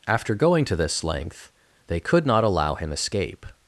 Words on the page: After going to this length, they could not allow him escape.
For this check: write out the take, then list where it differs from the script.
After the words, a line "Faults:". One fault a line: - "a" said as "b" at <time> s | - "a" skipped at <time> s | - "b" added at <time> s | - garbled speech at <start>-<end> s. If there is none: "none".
After going to this length, they could not allow him escape.
Faults:
none